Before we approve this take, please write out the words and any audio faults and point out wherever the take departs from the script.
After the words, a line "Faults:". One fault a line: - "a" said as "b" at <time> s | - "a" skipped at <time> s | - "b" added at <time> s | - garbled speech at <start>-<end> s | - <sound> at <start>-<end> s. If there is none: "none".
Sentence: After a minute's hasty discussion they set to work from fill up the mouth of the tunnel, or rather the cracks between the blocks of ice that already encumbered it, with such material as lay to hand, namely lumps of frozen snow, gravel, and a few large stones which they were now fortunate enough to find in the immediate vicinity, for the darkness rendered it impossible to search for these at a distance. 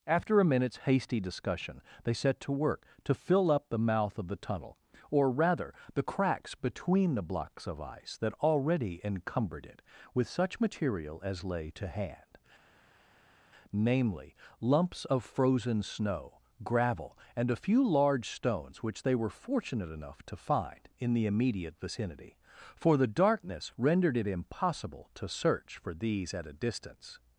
After a minute's hasty discussion they set to work to fill up the mouth of the tunnel, or rather the cracks between the blocks of ice that already encumbered it, with such material as lay to hand, namely lumps of frozen snow, gravel, and a few large stones which they were fortunate enough to find in the immediate vicinity, for the darkness rendered it impossible to search for these at a distance.
Faults:
- "from" said as "to" at 3.0 s
- "now" skipped at 19.3 s